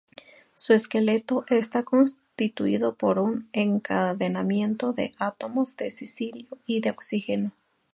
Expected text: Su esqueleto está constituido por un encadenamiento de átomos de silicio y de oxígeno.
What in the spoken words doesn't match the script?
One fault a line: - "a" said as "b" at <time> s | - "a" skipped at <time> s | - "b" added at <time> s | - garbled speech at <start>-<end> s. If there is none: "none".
none